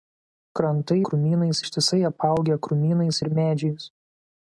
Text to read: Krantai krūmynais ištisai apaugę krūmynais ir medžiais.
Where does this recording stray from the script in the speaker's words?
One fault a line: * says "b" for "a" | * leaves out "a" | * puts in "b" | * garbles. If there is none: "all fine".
all fine